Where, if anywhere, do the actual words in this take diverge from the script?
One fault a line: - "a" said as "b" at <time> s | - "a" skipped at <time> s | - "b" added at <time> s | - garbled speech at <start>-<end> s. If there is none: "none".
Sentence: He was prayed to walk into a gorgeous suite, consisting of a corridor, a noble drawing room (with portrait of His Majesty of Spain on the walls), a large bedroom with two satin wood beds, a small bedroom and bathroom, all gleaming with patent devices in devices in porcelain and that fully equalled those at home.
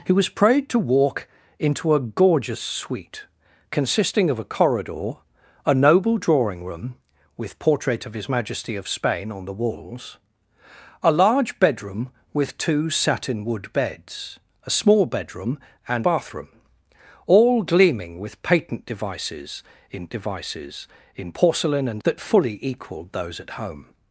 none